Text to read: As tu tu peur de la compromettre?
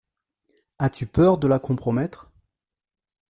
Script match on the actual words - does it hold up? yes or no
no